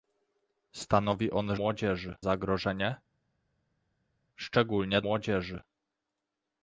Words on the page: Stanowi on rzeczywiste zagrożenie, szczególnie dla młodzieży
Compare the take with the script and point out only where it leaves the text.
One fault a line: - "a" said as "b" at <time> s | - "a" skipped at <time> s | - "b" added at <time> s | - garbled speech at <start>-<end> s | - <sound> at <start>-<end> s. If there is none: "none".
- "rzeczywiste" said as "młodzieży" at 1.5 s
- "dla" skipped at 5.0 s